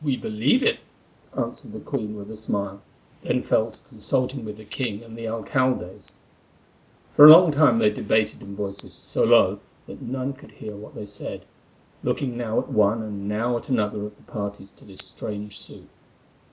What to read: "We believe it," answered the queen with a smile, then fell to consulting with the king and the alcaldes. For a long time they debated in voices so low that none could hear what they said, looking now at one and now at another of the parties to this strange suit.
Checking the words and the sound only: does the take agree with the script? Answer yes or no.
yes